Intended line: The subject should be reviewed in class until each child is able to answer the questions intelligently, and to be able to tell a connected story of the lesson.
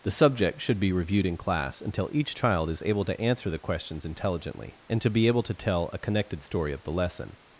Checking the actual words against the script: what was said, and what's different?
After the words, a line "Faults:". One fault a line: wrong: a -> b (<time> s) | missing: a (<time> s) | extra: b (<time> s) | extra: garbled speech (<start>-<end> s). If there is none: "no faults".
The subject should be reviewed in class until each child is able to answer the questions intelligently, and to be able to tell a connected story of the lesson.
Faults:
no faults